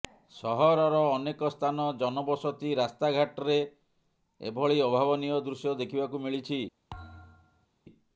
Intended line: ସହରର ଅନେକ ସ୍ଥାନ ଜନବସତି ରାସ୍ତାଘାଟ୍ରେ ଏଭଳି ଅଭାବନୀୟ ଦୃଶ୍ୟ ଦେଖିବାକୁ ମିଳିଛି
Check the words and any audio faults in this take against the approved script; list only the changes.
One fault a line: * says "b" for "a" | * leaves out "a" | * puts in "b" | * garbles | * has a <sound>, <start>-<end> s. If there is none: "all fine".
* has a thud, 6.9-7.7 s